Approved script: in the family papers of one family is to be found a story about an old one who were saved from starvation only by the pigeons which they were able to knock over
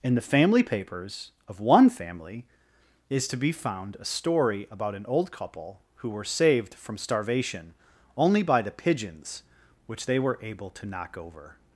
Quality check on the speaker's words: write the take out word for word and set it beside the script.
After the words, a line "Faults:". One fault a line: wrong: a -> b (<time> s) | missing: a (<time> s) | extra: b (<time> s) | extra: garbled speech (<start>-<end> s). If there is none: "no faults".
in the family papers of one family is to be found a story about an old couple who were saved from starvation only by the pigeons which they were able to knock over
Faults:
wrong: one -> couple (5.3 s)